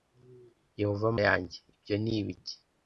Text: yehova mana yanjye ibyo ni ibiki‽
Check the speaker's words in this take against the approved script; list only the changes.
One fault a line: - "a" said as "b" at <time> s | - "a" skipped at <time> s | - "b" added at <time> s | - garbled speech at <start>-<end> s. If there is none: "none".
- "mana" skipped at 1.1 s